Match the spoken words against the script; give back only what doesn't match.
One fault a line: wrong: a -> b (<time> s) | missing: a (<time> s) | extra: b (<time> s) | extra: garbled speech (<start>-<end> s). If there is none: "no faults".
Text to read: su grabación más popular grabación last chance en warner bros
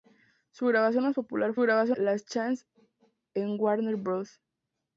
no faults